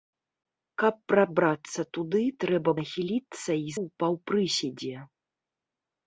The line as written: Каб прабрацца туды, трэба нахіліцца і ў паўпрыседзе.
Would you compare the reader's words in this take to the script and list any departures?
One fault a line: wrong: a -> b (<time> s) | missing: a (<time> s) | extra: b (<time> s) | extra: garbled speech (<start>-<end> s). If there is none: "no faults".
no faults